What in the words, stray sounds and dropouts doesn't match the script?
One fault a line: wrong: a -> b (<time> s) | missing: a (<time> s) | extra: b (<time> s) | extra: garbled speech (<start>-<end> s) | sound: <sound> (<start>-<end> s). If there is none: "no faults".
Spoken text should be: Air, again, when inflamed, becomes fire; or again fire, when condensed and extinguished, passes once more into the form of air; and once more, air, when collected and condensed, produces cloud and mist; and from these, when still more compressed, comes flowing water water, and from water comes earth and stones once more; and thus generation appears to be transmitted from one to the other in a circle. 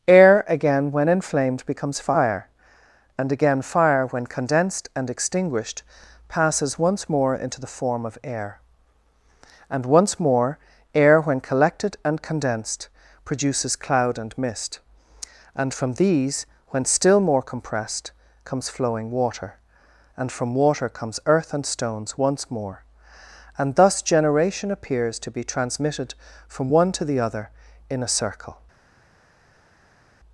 wrong: or -> and (3.2 s)
missing: water (19.6 s)